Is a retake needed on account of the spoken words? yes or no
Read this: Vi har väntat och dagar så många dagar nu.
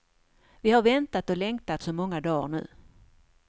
yes